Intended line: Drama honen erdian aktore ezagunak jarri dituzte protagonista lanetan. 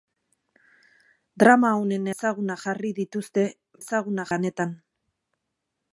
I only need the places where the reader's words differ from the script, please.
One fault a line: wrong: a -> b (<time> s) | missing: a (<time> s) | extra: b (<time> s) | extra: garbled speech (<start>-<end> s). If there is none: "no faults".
missing: erdian aktore (2.1 s)
wrong: protagonista -> ezagunak (3.8 s)